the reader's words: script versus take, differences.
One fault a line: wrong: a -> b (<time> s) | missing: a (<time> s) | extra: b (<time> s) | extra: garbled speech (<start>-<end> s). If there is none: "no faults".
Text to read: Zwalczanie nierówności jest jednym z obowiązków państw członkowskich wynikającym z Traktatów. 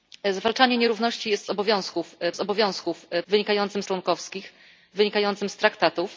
wrong: jednym -> obowiązków (1.5 s)
wrong: państw -> wynikającym (3.3 s)